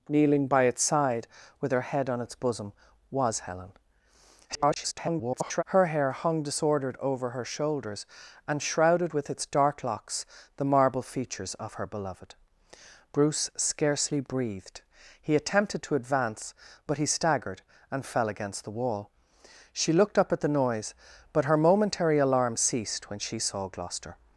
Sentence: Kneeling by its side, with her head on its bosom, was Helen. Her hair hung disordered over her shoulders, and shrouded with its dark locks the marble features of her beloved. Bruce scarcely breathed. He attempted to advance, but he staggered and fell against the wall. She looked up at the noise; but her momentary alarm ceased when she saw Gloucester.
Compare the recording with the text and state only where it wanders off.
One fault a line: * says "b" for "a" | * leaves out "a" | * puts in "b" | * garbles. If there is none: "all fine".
* garbles